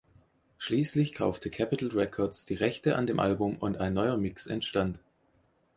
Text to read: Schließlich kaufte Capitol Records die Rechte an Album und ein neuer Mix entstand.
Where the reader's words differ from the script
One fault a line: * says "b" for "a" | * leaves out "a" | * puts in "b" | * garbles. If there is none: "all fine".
* puts in "dem"